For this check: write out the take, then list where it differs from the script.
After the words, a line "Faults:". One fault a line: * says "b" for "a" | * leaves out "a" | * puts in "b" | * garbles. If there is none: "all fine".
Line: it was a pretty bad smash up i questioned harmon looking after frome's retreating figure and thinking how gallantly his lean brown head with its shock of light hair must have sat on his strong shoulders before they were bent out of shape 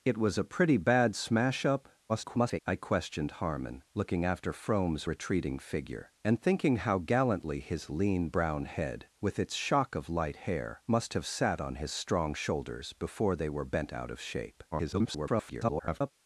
it was a pretty bad smash up [garbled] i questioned harmon looking after frome's retreating figure and thinking how gallantly his lean brown head with its shock of light hair must have sat on his strong shoulders before they were bent out of shape [garbled]
Faults:
* garbles
* garbles